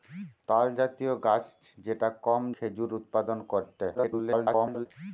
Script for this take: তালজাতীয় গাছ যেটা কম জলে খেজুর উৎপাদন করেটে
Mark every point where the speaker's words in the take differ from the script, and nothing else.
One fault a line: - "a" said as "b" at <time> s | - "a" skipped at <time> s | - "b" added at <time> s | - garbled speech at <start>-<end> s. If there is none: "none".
- "জলে" skipped at 2.4 s
- garbled speech at 3.9-4.9 s